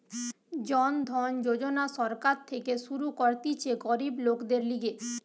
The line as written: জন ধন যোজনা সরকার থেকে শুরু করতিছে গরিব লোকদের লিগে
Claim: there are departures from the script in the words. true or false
false